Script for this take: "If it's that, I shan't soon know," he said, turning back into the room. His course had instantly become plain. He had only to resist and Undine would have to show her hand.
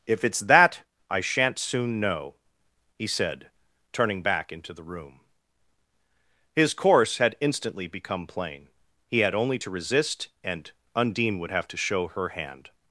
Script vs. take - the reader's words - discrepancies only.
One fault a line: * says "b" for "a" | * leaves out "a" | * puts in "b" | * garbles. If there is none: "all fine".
all fine